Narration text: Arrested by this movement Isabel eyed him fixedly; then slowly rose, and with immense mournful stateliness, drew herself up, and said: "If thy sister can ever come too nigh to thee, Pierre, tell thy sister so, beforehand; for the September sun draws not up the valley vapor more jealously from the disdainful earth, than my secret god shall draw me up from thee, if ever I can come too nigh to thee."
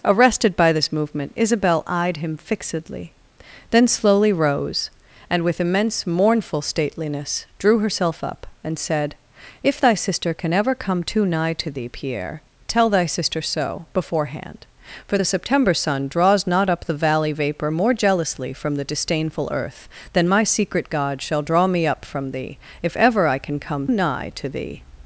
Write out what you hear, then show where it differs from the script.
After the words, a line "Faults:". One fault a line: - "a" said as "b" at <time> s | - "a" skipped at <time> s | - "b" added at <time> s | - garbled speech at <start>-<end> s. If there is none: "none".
Arrested by this movement Isabel eyed him fixedly; then slowly rose, and with immense mournful stateliness, drew herself up, and said: "If thy sister can ever come too nigh to thee, Pierre, tell thy sister so, beforehand; for the September sun draws not up the valley vapor more jealously from the disdainful earth, than my secret god shall draw me up from thee, if ever I can come nigh to thee."
Faults:
- "too" skipped at 23.9 s